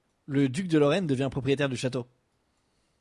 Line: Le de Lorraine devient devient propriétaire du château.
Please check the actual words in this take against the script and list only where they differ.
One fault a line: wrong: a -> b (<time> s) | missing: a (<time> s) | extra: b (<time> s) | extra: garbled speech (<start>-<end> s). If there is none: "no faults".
extra: duc (0.5 s)
missing: devient (1.3 s)